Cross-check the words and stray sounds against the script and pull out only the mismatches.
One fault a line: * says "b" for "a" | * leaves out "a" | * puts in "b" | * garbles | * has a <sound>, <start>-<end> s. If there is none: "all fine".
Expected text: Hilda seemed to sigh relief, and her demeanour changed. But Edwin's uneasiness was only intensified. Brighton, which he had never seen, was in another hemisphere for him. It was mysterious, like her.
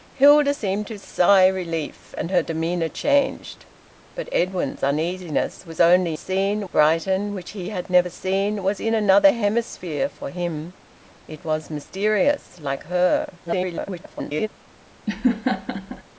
* says "seen" for "intensified"
* garbles
* has a laugh, 15.1-16.0 s